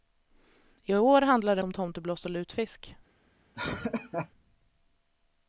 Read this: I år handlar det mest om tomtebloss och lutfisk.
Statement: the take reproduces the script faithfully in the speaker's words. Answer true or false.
false